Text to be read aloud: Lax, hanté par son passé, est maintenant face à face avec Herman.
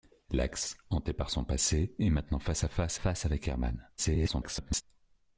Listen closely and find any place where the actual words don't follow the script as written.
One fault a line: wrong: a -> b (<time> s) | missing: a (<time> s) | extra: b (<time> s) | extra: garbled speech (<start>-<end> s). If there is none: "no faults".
extra: face (2.9 s)
extra: garbled speech (4.0-4.8 s)